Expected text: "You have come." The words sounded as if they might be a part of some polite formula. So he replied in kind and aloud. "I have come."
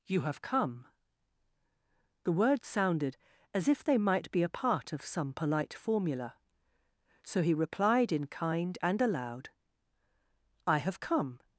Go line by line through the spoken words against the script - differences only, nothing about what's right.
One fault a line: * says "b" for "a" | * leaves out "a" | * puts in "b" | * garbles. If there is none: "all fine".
all fine